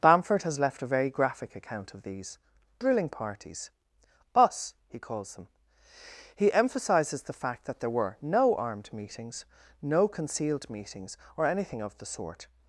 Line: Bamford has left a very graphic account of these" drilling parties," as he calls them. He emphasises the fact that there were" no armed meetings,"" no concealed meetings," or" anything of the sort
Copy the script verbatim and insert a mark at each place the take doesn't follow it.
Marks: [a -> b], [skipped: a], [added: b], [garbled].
Bamford has left a very graphic account of these" drilling parties," [as -> us] he calls them. He emphasises the fact that there were" no armed meetings,"" no concealed meetings," or" anything of the sort